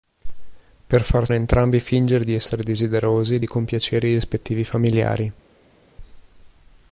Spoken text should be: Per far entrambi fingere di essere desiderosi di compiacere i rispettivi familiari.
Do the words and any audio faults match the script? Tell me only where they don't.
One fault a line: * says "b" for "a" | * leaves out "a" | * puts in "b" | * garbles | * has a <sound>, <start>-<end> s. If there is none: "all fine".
all fine